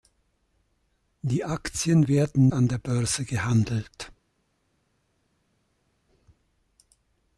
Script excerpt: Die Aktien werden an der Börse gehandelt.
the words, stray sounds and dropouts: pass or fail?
pass